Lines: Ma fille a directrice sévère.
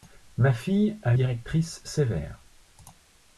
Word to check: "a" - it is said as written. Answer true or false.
true